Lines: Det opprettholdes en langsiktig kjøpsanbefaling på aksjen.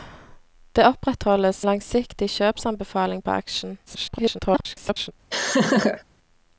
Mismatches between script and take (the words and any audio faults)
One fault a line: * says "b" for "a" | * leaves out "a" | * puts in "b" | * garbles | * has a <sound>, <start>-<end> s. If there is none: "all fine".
* leaves out "en"
* garbles
* has a laugh, 5.3-6.0 s